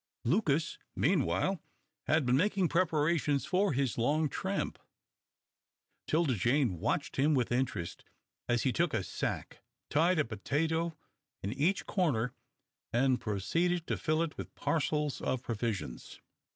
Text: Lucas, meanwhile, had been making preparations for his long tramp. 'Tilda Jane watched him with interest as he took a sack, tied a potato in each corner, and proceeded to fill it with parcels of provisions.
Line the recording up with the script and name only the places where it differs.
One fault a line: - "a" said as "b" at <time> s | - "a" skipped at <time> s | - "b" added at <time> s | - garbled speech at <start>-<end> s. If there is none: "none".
none